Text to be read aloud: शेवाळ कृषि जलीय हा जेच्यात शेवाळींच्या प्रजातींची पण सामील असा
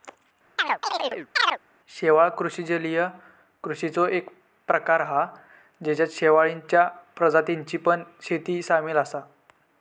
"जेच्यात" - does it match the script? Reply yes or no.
yes